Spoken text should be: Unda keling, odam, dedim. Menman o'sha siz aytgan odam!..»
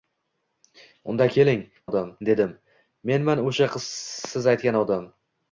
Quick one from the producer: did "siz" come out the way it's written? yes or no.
yes